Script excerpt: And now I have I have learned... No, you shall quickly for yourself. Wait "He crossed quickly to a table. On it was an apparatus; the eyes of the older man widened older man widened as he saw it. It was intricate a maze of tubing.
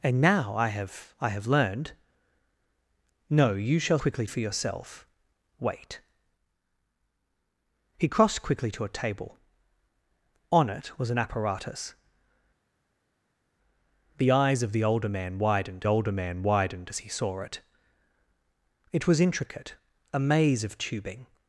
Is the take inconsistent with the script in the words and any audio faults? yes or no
no